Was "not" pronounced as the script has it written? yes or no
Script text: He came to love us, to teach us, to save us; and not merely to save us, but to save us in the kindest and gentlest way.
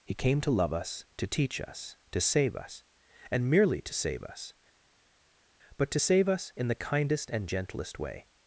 no